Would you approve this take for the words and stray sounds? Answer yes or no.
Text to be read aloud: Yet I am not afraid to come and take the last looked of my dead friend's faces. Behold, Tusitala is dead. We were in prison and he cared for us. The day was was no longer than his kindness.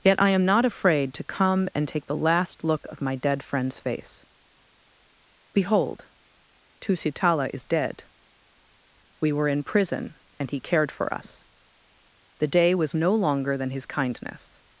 no